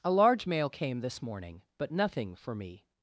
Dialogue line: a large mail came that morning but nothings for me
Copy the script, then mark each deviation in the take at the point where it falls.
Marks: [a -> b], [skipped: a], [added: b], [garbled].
a large mail came [that -> this] morning but [nothings -> nothing] for me